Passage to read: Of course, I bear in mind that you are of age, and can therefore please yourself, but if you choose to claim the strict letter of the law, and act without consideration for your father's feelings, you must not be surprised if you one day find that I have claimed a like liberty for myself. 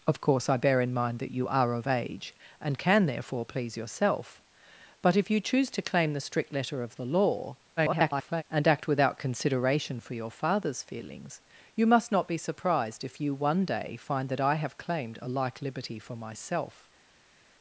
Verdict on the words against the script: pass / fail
fail